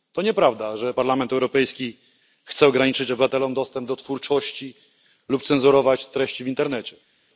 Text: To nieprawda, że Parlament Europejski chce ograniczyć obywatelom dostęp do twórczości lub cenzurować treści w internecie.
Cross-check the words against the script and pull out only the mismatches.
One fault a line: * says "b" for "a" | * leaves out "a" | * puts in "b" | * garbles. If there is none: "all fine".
all fine